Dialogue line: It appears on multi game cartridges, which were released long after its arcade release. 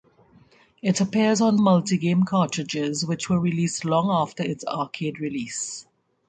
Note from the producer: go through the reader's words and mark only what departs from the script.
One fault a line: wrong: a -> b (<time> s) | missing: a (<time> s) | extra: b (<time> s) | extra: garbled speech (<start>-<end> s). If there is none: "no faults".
no faults